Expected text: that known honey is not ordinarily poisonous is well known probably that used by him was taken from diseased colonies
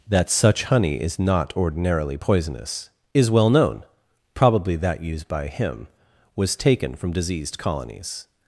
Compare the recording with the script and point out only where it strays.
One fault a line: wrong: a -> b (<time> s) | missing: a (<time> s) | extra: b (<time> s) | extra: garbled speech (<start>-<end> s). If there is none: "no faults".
wrong: known -> such (0.3 s)